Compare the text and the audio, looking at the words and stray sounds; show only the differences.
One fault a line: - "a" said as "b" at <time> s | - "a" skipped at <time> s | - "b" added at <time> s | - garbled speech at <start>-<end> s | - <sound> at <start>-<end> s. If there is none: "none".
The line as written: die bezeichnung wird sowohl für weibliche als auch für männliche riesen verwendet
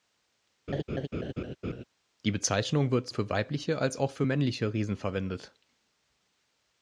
- laugh at 0.7-1.8 s
- "sowohl" skipped at 3.1 s